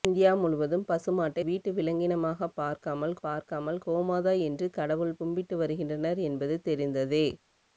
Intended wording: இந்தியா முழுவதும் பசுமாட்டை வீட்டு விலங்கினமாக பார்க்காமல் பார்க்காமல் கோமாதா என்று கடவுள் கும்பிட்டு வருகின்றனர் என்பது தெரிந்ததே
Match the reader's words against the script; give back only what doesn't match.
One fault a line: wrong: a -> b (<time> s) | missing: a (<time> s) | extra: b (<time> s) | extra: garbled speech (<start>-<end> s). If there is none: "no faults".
no faults